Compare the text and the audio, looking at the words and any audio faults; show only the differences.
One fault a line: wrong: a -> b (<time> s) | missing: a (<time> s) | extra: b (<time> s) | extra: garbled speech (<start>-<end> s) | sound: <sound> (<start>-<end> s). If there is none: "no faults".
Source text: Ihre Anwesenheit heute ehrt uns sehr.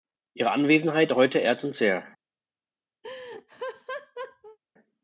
sound: laugh (3.0-4.6 s)